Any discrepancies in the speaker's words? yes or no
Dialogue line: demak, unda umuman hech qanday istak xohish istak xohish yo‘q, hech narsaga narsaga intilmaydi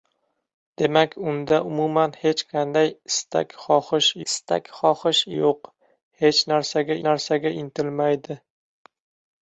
no